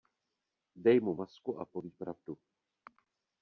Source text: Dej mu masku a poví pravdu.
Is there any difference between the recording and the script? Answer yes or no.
no